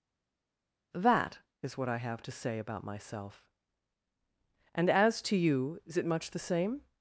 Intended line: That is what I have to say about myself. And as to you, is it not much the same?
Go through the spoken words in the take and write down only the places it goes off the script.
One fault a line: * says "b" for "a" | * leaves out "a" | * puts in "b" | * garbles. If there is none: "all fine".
* leaves out "not"